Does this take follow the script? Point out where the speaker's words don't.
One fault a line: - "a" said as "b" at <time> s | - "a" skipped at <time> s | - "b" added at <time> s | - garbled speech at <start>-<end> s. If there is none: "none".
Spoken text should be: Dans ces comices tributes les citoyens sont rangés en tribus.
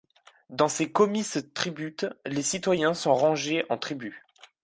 none